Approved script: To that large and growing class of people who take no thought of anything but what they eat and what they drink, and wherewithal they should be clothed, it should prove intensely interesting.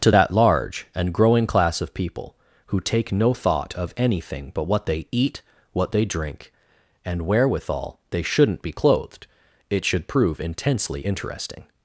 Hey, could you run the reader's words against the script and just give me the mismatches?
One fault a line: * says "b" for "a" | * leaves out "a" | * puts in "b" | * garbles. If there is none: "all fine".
* leaves out "and"
* says "shouldn't" for "should"